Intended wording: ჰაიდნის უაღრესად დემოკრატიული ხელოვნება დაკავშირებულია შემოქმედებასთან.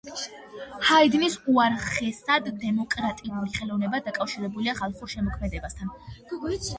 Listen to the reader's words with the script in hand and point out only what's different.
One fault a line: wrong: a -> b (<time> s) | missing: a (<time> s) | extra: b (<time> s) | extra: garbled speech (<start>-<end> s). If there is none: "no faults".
extra: ხალხურ (4.8 s)